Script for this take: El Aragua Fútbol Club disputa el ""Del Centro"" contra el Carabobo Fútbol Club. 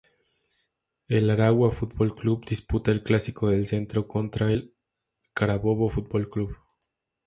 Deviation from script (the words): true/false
true